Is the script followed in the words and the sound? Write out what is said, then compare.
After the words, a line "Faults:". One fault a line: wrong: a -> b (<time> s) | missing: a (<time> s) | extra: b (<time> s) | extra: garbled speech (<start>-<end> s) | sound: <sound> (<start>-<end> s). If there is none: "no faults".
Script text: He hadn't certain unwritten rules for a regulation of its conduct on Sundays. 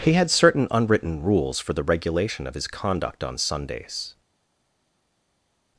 He had certain unwritten rules for the regulation of his conduct on Sundays.
Faults:
wrong: hadn't -> had (0.1 s)
wrong: a -> the (1.7 s)
wrong: its -> his (2.5 s)